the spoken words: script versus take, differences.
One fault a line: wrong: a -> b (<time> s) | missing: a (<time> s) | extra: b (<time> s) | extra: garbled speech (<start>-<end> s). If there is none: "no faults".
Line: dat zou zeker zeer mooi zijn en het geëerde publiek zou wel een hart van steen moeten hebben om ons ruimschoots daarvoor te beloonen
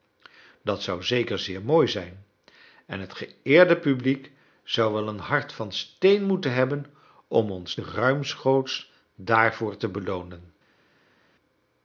no faults